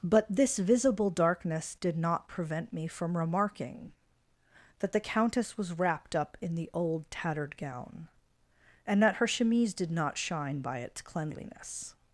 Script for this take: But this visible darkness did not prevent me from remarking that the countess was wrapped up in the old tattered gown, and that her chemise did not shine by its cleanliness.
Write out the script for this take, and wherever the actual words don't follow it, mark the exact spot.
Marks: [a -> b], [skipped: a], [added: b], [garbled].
But this visible darkness did not prevent me from remarking that the countess was wrapped up in the old tattered gown, and that her chemise did not shine by its cleanliness.